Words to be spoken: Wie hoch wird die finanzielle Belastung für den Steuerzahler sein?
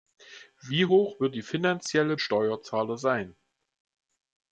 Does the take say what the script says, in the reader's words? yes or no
no